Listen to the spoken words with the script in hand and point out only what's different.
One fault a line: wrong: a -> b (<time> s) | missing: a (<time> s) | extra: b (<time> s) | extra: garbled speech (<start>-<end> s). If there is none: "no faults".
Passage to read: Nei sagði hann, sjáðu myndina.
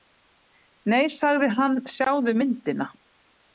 no faults